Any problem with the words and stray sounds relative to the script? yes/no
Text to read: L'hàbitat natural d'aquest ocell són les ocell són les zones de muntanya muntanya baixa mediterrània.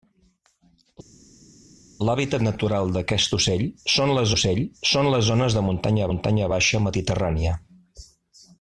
no